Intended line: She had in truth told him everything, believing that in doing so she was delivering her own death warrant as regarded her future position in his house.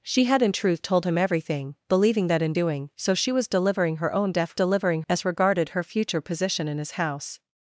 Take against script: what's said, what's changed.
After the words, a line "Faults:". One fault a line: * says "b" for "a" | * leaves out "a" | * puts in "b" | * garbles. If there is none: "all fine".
She had in truth told him everything, believing that in doing so she was delivering her own death delivering as regarded her future position in his house.
Faults:
* says "delivering" for "warrant"